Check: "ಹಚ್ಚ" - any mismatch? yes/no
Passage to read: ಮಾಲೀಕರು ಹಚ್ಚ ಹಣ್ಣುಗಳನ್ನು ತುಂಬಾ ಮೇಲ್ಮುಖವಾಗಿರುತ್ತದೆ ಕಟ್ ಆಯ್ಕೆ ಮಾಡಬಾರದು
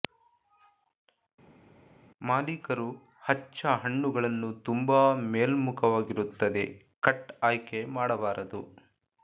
no